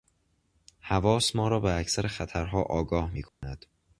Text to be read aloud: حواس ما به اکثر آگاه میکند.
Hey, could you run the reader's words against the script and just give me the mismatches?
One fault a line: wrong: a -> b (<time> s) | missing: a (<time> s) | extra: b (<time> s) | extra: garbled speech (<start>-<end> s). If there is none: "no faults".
extra: را (1.5 s)
extra: خطرها (2.1 s)